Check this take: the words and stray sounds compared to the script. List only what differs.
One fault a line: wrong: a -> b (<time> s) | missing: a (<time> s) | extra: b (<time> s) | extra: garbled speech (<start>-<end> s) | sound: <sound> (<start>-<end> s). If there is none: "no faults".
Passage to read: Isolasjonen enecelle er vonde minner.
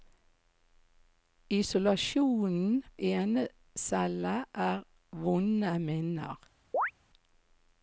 sound: chirp (6.7-6.9 s)